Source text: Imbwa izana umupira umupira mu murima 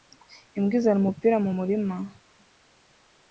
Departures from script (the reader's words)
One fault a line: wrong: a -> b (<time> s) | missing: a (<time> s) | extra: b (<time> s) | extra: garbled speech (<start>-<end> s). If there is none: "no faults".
missing: umupira (1.4 s)